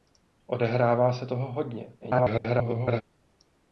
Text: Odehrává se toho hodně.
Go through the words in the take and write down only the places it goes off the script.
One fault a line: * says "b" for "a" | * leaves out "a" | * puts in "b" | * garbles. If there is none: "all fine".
* garbles